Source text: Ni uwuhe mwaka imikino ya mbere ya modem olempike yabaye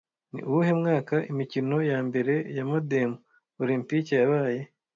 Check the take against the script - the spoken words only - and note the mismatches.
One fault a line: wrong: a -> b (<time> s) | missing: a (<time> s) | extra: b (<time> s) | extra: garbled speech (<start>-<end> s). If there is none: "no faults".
no faults